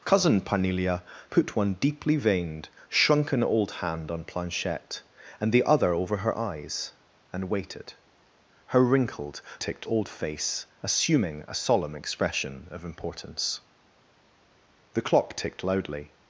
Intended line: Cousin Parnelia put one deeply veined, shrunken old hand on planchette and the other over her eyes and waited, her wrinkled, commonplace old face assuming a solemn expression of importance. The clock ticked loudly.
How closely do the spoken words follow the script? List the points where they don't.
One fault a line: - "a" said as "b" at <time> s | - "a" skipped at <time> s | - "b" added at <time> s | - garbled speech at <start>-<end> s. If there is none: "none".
- "commonplace" said as "ticked" at 9.6 s